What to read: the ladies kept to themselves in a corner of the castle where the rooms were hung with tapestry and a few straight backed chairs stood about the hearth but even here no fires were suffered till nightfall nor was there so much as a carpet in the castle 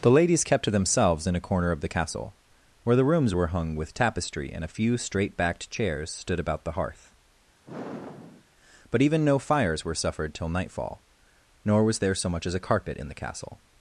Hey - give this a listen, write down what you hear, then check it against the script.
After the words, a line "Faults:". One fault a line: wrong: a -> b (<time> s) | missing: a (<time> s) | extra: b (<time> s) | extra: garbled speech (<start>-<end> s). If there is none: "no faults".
the ladies kept to themselves in a corner of the castle where the rooms were hung with tapestry and a few straight backed chairs stood about the hearth but even no fires were suffered till nightfall nor was there so much as a carpet in the castle
Faults:
missing: here (9.2 s)